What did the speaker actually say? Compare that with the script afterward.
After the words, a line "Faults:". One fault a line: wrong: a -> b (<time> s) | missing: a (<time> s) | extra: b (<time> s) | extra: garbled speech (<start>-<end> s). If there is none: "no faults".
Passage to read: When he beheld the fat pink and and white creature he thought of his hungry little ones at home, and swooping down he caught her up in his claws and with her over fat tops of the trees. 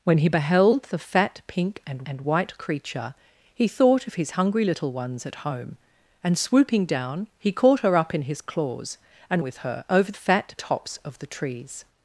When he beheld the fat pink and and white creature he thought of his hungry little ones at home, and swooping down he caught her up in his claws and with her over fat tops of the trees.
Faults:
no faults